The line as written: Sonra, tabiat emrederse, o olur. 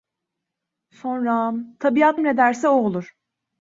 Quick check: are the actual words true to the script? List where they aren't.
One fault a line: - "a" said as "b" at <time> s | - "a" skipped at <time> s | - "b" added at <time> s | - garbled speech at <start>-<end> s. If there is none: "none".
none